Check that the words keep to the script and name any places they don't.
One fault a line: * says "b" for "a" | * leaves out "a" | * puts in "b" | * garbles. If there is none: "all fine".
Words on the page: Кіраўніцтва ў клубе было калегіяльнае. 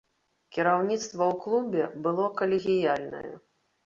all fine